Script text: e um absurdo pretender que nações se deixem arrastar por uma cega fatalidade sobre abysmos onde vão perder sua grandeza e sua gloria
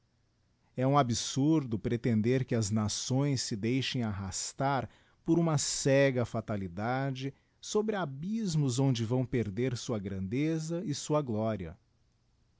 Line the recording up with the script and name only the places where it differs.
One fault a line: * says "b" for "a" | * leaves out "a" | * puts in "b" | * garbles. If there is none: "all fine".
* puts in "as"